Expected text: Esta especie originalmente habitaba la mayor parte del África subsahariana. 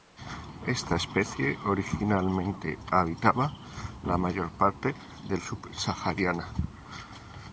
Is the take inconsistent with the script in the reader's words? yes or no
yes